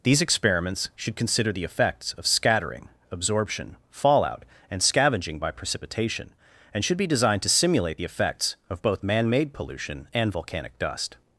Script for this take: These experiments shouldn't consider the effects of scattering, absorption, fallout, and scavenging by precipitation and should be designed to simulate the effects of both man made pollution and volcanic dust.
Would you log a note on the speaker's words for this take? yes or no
yes